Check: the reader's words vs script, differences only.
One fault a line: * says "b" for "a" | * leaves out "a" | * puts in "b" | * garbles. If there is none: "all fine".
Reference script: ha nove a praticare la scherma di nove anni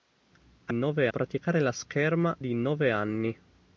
all fine